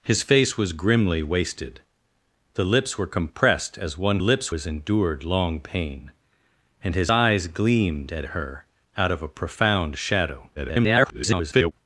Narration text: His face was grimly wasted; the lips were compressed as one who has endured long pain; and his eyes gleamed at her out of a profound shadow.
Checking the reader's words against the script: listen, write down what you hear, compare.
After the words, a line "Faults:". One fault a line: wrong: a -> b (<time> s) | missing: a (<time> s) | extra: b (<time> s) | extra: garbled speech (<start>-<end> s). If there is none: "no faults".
His face was grimly wasted; the lips were compressed as one lips has endured long pain; and his eyes gleamed at her out of a profound shadow. [garbled]
Faults:
wrong: who -> lips (4.2 s)
extra: garbled speech (10.6-11.7 s)